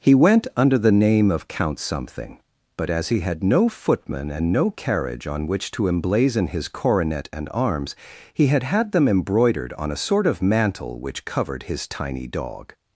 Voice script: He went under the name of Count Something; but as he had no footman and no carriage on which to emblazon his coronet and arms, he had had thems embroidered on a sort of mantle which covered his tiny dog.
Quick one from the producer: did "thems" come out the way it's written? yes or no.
no